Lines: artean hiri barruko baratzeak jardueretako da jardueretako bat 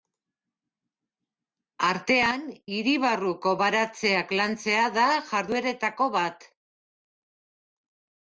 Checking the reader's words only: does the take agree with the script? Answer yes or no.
no